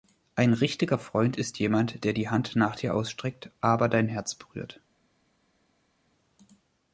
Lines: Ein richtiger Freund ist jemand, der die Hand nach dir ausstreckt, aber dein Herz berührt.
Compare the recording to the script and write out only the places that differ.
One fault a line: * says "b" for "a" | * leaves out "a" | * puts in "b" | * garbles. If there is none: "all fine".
all fine